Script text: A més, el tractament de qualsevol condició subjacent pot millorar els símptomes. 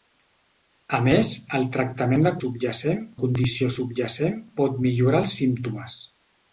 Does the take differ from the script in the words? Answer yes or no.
yes